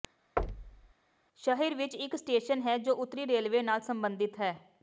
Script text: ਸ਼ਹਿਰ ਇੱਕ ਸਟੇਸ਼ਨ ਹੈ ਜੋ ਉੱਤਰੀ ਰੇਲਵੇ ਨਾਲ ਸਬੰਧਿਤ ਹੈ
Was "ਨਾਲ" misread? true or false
false